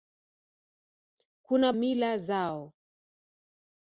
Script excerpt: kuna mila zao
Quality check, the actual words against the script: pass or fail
pass